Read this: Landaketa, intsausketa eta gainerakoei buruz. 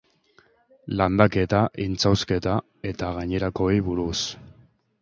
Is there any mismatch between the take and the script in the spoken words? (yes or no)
no